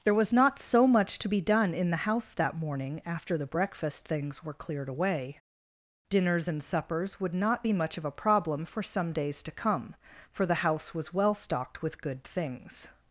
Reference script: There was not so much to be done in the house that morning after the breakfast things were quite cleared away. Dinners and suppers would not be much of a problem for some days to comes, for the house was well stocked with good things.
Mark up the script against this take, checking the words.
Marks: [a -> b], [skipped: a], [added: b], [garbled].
There was not so much to be done in the house that morning after the breakfast things were [skipped: quite] cleared away. Dinners and suppers would not be much of a problem for some days to [comes, -> come] for the house was well stocked with good things.